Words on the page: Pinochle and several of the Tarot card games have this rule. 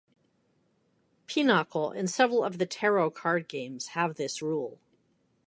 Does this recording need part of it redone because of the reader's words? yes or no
no